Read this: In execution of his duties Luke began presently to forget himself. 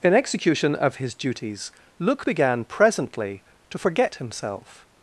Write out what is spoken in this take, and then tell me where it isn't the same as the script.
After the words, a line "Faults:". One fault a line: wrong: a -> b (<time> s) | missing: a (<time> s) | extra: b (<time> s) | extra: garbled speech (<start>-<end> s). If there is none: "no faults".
In execution of his duties Luke began presently to forget himself.
Faults:
no faults